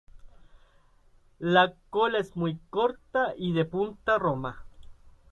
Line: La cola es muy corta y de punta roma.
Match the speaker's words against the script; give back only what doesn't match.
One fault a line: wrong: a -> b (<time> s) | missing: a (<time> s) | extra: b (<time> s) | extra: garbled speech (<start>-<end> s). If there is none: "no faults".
no faults